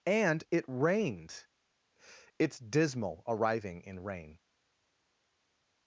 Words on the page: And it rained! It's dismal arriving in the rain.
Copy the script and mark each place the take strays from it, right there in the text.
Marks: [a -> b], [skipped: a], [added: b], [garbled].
And it rained! It's dismal arriving in [skipped: the] rain.